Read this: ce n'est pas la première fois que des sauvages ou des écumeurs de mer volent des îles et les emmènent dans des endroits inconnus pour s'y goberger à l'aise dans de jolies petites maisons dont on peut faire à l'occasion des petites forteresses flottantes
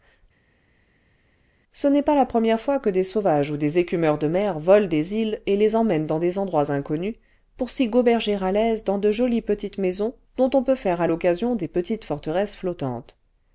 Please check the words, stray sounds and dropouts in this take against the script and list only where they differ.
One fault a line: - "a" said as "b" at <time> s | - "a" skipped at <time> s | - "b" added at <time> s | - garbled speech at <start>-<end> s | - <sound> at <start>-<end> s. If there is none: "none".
none